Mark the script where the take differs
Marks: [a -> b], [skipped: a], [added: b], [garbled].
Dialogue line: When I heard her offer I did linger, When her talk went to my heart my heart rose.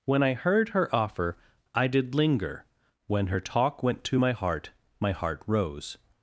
When I heard her offer I did linger, When her talk went to my heart my heart rose.